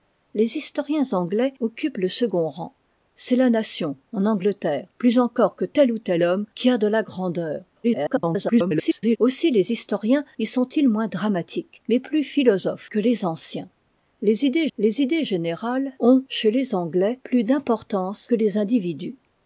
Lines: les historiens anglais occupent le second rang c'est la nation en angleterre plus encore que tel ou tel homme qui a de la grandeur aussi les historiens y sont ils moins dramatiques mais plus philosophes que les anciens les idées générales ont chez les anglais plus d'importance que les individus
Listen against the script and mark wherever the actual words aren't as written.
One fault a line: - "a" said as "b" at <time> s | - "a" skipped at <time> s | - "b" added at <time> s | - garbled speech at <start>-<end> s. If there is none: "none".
- garbled speech at 7.8-9.2 s
- "les idées" added at 14.8 s